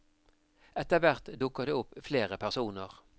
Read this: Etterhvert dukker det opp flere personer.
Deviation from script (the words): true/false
false